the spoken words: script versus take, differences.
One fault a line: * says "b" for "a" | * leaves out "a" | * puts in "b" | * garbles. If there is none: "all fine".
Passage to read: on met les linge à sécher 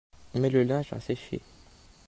* says "le" for "les"